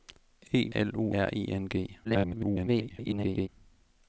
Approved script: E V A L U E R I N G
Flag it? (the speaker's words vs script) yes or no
yes